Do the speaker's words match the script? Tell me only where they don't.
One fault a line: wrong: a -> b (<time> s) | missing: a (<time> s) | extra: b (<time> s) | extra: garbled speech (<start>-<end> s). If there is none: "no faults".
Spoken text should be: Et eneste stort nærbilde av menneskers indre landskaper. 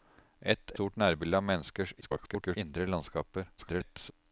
missing: eneste (0.7 s)
extra: garbled speech (2.0-2.6 s)
extra: garbled speech (3.6-4.1 s)